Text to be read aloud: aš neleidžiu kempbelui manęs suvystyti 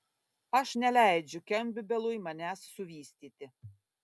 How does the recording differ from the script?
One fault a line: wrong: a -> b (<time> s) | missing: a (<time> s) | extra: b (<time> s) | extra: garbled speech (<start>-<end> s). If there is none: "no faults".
no faults